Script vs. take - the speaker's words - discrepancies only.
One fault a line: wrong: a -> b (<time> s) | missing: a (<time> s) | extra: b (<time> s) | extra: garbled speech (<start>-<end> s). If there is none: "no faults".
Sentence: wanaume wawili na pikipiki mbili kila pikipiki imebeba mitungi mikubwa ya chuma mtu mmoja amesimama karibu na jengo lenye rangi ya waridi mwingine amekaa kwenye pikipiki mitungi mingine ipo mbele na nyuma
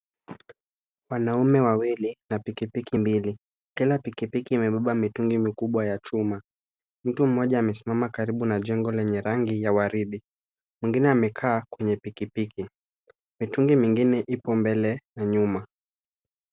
no faults